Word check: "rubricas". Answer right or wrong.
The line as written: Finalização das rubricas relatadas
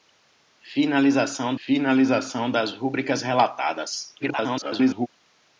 right